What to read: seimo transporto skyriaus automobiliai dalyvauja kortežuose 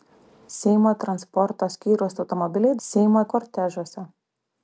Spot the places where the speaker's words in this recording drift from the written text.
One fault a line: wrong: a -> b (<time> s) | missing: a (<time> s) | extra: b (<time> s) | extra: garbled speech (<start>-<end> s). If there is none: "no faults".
wrong: dalyvauja -> seimo (2.8 s)